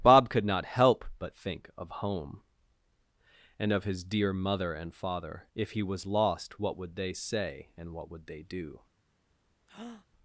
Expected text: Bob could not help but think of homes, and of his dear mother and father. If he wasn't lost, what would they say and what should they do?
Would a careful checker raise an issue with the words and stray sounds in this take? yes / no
yes